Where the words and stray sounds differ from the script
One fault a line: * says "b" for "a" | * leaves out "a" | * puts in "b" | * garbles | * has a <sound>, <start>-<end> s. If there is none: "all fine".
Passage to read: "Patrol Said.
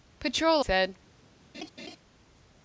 * has a laugh, 1.5-2.0 s